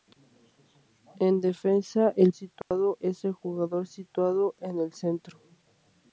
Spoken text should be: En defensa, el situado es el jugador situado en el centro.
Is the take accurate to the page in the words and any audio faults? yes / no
no